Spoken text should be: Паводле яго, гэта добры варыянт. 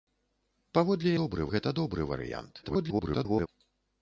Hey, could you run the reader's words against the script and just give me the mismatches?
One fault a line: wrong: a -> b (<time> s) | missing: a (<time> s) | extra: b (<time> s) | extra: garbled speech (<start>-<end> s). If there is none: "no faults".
wrong: яго -> добры (1.2 s)
extra: garbled speech (2.6-3.5 s)